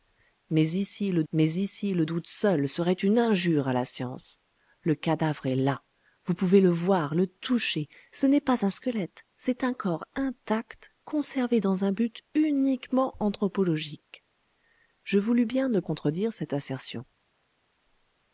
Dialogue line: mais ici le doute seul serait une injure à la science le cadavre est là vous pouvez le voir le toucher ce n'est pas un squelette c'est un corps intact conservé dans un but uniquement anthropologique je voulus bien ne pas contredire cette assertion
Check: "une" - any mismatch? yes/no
no